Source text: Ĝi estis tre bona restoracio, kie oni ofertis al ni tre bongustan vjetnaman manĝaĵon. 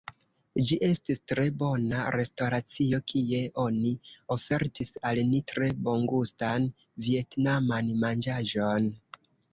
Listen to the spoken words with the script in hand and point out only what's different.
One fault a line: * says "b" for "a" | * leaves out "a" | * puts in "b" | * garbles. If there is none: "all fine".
all fine